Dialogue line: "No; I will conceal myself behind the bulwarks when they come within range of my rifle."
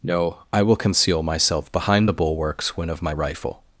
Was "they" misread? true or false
true